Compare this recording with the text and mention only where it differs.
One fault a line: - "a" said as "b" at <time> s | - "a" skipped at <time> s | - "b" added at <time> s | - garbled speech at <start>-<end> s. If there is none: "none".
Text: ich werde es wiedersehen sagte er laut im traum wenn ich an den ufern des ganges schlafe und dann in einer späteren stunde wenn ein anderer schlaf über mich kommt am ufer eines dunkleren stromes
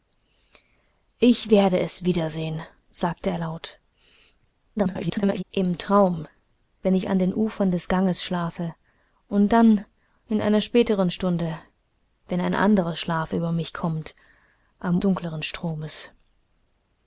- garbled speech at 4.8-5.4 s
- "ufer eines" skipped at 15.0 s